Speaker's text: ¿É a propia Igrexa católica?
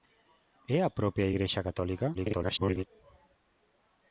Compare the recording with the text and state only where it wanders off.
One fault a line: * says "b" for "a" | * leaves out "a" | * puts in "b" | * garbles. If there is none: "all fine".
* garbles